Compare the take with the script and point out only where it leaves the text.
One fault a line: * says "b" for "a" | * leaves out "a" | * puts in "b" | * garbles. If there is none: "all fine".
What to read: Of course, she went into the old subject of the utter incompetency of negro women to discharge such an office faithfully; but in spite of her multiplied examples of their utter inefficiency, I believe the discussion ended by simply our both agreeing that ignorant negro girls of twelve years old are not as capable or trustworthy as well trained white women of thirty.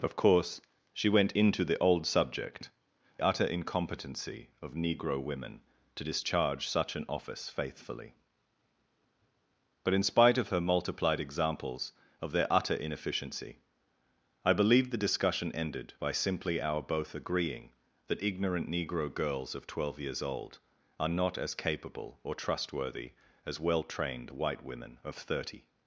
* leaves out "of the"